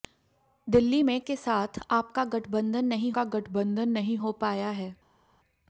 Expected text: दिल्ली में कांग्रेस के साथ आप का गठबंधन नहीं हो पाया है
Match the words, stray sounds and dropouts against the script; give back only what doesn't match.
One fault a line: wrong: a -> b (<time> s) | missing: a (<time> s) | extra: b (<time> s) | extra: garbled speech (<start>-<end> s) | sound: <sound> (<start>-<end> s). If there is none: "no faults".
missing: कांग्रेस (1.2 s)
extra: का गठबंधन नहीं (3.1 s)